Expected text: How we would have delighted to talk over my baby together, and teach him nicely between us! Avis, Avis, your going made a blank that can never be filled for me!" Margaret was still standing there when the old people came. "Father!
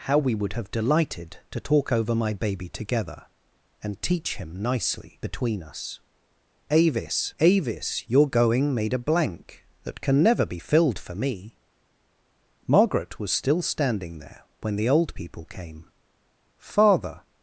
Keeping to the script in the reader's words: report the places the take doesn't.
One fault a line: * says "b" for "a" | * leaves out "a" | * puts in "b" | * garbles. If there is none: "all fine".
all fine